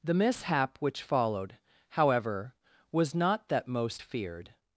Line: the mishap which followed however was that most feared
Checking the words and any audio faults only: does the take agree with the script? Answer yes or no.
no